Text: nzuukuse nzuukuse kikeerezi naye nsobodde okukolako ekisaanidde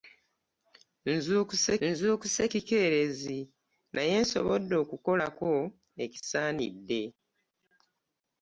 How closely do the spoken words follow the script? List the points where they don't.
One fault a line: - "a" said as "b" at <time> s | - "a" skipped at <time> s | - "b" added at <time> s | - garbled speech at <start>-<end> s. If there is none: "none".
none